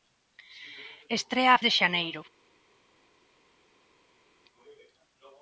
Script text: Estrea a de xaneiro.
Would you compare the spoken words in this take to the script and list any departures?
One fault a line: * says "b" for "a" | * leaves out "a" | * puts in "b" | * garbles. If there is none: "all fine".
all fine